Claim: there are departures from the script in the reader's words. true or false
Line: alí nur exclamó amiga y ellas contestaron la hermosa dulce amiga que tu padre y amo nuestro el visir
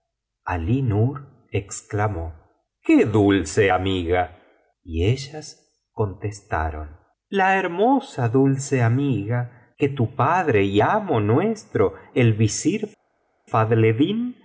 true